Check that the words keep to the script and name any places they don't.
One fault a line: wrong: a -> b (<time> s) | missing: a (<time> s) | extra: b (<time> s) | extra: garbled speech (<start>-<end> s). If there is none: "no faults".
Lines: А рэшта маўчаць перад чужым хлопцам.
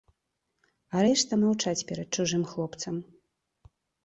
no faults